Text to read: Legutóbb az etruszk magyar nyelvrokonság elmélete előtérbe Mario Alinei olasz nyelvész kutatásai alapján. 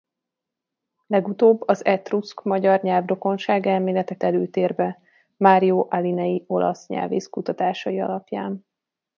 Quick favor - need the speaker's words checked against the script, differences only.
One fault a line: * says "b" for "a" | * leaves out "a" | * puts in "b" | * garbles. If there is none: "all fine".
all fine